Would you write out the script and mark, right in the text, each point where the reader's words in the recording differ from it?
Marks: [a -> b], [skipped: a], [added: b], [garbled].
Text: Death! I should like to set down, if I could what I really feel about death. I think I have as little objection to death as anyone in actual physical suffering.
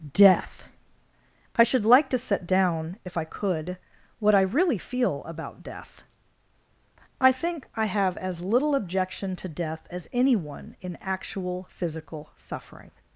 Death! I should like to set down, if I could what I really feel about death. I think I have as little objection to death as anyone in actual physical suffering.